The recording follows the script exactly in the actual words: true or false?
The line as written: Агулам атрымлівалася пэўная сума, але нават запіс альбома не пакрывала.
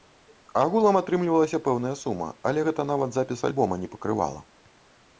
false